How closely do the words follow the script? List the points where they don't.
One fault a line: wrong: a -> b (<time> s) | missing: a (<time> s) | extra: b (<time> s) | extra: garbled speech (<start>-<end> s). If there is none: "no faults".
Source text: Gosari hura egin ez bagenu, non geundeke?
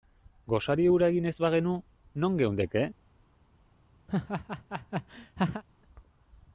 no faults